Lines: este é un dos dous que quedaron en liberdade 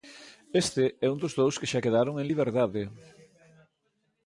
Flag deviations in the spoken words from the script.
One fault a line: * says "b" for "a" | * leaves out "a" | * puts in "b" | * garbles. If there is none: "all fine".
* puts in "xa"